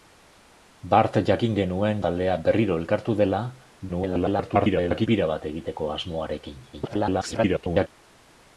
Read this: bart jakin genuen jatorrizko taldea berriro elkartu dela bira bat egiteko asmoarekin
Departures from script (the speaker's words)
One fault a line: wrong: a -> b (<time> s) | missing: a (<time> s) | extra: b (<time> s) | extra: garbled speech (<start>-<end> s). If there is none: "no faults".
missing: jatorrizko (2.0 s)
extra: garbled speech (3.9-5.1 s)
extra: garbled speech (6.7-7.9 s)